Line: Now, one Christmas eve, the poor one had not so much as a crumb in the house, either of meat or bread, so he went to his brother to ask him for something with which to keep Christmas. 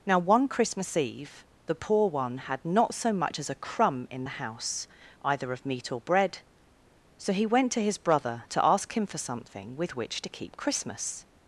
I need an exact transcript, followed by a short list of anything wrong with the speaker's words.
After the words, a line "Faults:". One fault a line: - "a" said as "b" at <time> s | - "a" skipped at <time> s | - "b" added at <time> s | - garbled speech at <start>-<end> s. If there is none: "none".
Now, one Christmas eve, the poor one had not so much as a crumb in the house, either of meat or bread, so he went to his brother to ask him for something with which to keep Christmas.
Faults:
none